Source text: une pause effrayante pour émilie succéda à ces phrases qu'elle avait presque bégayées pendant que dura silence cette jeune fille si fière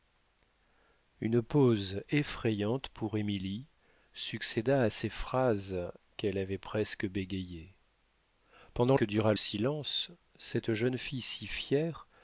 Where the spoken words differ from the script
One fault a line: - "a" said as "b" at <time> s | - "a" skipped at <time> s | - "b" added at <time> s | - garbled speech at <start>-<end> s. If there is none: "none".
none